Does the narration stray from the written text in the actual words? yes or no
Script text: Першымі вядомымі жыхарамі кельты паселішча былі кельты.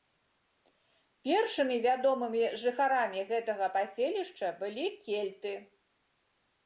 yes